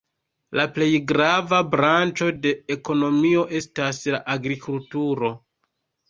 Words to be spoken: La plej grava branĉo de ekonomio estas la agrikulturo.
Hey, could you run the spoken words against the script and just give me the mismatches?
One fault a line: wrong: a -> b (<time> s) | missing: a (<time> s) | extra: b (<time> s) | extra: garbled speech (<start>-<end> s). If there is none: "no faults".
no faults